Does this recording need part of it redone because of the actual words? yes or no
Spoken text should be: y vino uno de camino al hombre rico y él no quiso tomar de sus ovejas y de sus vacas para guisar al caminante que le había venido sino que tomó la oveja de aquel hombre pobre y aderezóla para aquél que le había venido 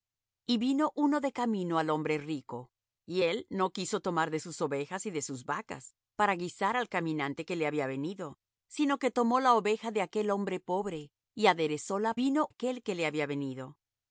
yes